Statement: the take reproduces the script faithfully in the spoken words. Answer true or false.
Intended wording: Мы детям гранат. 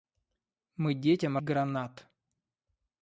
true